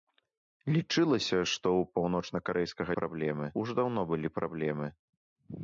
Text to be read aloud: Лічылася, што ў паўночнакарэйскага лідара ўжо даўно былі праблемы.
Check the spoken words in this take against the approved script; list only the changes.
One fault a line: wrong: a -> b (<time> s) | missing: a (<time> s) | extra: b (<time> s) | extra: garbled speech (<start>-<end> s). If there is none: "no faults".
wrong: лідара -> праблемы (3.0 s)